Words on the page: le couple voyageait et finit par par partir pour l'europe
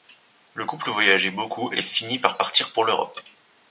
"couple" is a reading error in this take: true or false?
false